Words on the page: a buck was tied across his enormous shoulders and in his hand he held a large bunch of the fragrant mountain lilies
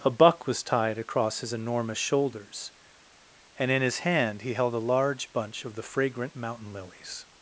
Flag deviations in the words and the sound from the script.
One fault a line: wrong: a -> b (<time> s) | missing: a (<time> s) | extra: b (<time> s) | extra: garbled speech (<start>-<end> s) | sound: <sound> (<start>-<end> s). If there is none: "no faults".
no faults